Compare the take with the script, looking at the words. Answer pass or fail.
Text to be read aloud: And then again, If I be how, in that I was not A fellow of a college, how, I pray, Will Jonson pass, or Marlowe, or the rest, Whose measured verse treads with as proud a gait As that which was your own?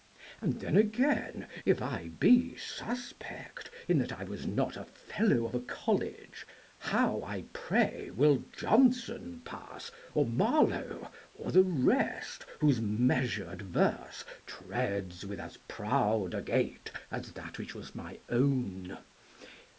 fail